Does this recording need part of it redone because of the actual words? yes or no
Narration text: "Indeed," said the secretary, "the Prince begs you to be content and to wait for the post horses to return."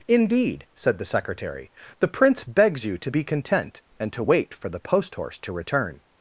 yes